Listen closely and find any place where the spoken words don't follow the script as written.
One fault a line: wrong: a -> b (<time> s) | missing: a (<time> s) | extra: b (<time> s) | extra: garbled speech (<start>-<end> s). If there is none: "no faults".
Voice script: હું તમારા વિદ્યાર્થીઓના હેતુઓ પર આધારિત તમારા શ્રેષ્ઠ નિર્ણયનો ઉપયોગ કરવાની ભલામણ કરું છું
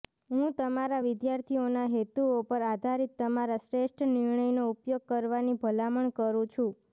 no faults